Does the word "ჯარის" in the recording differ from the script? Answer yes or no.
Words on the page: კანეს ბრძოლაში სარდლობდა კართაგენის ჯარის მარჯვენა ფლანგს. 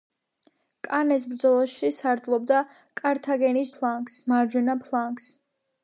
yes